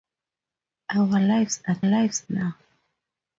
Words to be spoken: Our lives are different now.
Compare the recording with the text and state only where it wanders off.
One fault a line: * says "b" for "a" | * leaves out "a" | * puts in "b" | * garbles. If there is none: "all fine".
* says "lives" for "different"